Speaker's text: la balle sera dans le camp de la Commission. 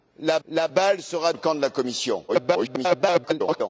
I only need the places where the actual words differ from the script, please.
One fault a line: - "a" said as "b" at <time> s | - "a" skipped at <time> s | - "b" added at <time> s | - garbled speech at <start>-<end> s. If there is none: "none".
- "la" added at 0.5 s
- "dans" skipped at 1.3 s
- garbled speech at 2.3-3.7 s